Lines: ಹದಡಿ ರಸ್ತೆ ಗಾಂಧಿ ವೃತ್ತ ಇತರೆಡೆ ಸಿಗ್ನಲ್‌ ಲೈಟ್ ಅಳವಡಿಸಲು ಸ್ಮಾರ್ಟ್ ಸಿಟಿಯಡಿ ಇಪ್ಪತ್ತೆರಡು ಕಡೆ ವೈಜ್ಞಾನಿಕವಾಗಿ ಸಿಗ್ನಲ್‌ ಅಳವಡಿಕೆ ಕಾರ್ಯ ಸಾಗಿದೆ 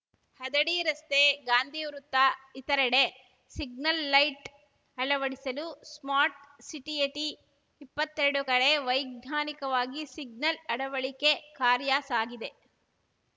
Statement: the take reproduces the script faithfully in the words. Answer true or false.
true